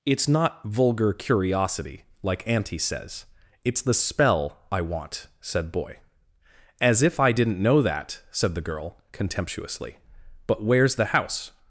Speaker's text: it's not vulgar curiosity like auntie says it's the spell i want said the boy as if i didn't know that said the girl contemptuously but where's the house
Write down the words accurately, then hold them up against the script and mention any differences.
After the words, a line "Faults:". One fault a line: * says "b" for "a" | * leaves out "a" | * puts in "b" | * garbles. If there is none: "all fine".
it's not vulgar curiosity like auntie says it's the spell i want said boy as if i didn't know that said the girl contemptuously but where's the house
Faults:
* leaves out "the"